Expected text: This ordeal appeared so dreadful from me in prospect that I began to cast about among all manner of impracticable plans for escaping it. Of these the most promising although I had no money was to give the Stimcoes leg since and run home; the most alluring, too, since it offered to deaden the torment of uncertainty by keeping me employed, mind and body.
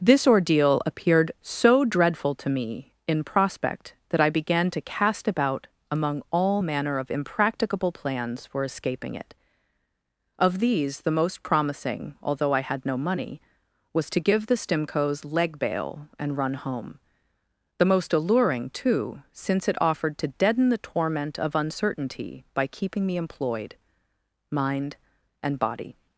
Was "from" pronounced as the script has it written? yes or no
no